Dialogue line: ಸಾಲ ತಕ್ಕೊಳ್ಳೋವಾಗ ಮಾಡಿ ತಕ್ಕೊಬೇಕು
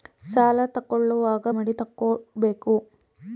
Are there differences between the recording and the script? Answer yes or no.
no